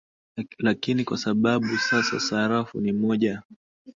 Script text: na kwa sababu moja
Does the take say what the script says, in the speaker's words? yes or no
no